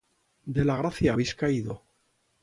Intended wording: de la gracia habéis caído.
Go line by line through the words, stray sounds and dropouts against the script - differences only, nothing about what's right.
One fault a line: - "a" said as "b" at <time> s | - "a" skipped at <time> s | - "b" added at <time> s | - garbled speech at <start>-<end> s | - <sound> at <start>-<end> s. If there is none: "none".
none